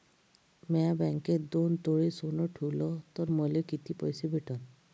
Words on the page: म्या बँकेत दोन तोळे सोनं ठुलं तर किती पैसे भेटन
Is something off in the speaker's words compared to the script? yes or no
yes